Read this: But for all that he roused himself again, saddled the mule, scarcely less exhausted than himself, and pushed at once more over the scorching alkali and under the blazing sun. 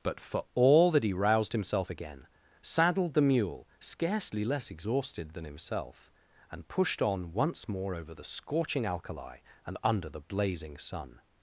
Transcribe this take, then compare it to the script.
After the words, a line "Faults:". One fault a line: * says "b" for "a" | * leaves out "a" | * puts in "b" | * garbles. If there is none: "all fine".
But for all that he roused himself again, saddled the mule, scarcely less exhausted than himself, and pushed on once more over the scorching alkali and under the blazing sun.
Faults:
* says "on" for "at"